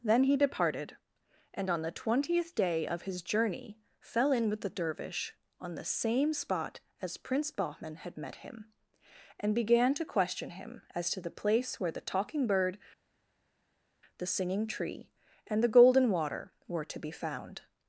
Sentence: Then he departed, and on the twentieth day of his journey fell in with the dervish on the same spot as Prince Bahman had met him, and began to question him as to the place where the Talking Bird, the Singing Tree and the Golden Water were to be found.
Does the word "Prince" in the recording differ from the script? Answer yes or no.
no